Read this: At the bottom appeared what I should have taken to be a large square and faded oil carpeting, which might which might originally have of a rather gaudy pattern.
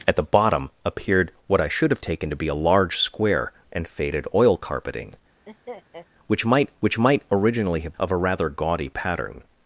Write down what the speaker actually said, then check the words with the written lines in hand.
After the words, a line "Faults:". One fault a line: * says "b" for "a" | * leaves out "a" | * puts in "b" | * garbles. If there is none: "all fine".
At the bottom appeared what I should have taken to be a large square and faded oil carpeting, which might which might originally have of a rather gaudy pattern.
Faults:
all fine